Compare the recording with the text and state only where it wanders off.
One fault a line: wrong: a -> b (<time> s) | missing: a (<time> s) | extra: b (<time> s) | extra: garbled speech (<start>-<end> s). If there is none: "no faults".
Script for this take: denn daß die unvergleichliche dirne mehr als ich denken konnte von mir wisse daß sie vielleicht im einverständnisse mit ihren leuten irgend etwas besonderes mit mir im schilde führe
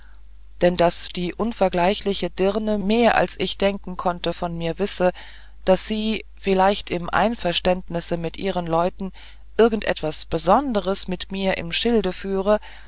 no faults